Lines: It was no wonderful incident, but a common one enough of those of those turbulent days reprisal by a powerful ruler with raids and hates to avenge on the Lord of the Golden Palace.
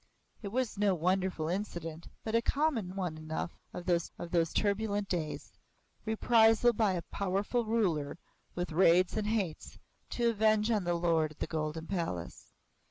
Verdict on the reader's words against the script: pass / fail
pass